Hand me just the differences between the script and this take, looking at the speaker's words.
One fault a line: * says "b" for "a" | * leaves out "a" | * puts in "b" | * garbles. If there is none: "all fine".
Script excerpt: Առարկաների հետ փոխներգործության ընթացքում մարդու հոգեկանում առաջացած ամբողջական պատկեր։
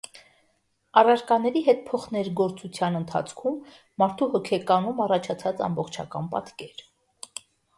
all fine